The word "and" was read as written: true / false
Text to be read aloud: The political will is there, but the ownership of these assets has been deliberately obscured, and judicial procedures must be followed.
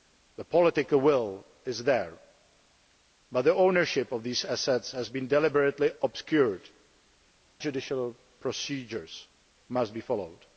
false